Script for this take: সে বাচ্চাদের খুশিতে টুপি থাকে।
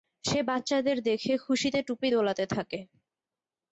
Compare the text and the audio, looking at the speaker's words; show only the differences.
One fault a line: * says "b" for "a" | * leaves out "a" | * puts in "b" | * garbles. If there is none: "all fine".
* puts in "দেখে"
* puts in "দোলাতে"